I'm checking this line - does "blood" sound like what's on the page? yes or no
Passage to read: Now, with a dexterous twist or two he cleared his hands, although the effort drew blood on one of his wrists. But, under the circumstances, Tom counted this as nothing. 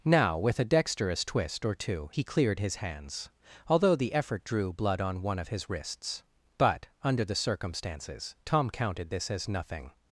yes